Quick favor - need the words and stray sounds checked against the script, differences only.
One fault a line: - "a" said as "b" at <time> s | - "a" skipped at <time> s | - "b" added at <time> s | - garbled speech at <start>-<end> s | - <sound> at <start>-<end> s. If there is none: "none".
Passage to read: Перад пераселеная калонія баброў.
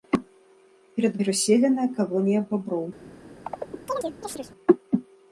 - chirp at 3.4-4.5 s